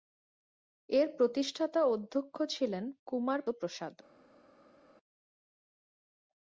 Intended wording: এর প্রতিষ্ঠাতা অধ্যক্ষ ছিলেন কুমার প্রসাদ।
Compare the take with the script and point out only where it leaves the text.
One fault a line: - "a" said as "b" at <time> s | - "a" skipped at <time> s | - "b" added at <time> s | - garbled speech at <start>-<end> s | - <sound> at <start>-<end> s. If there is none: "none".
none